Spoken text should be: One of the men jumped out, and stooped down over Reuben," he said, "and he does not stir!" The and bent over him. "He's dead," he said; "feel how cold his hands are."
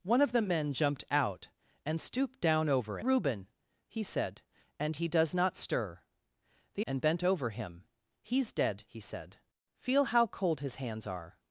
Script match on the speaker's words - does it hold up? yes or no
yes